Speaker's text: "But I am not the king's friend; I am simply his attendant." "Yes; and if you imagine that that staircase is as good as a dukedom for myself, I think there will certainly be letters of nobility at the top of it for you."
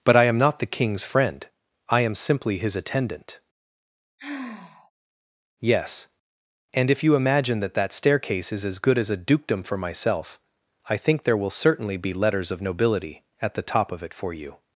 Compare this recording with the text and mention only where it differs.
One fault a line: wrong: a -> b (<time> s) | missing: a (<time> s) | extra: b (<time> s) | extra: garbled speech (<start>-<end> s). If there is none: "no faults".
no faults